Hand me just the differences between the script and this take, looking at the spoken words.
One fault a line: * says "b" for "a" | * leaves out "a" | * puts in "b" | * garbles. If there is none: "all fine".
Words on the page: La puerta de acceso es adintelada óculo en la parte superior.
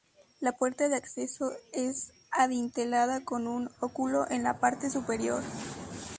* puts in "con un"